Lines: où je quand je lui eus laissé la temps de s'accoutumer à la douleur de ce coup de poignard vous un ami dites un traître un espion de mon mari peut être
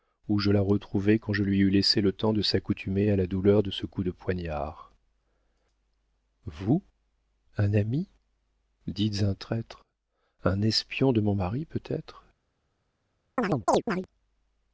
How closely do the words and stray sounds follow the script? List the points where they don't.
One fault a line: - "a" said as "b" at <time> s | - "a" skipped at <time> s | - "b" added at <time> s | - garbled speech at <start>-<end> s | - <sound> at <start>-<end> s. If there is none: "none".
- "la retrouvai" added at 0.5 s
- "la" said as "le" at 2.0 s
- chirp at 13.4-14.1 s